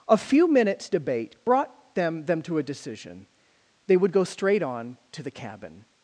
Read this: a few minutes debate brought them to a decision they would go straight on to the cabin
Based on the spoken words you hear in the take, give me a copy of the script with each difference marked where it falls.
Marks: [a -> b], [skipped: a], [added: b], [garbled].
a few minutes debate brought them [added: them] to a decision they would go straight on to the cabin